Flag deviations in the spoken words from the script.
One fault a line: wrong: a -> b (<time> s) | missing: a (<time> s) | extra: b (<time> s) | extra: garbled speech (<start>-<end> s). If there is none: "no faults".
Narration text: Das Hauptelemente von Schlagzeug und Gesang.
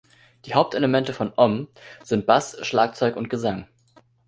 wrong: Das -> Die (0.5 s)
extra: Om sind Bass (1.4 s)